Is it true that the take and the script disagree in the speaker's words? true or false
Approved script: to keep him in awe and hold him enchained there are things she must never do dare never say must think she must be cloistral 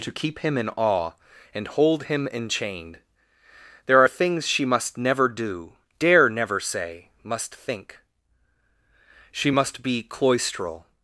false